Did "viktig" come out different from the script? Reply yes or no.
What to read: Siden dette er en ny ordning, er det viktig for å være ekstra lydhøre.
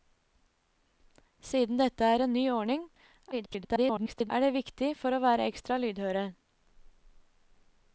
no